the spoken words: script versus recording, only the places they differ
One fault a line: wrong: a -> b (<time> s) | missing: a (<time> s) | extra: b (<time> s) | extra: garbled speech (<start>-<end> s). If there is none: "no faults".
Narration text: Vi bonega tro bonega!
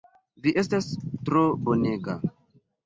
wrong: bonega -> estas (0.6 s)